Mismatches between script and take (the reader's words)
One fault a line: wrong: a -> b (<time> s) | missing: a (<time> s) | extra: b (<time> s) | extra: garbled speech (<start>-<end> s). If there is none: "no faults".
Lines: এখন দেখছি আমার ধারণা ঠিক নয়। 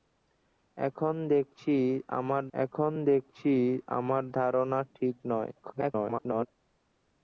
extra: এখন দেখছি আমার (2.5 s)
extra: garbled speech (5.6-6.5 s)